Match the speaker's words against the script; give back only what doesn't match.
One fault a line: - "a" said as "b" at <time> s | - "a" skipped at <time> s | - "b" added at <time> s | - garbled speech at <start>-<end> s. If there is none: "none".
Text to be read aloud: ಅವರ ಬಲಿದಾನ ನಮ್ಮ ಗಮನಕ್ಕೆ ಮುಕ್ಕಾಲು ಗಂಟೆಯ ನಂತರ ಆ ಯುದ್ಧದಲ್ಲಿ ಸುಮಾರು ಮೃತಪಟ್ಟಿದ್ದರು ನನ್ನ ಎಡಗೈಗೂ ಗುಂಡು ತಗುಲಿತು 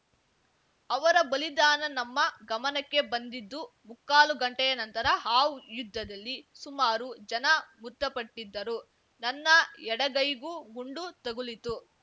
- "ಬಂದಿದ್ದು" added at 3.1 s
- "ಜನ" added at 7.3 s